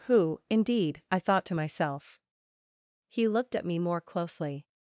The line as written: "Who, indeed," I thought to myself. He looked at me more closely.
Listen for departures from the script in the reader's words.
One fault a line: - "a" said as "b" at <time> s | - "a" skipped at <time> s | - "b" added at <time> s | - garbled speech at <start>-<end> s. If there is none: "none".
none